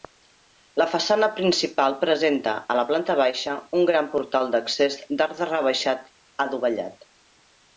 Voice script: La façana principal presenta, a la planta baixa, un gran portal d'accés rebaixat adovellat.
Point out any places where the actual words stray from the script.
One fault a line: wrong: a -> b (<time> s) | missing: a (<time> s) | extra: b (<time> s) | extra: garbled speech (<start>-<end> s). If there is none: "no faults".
extra: d'arc (5.2 s)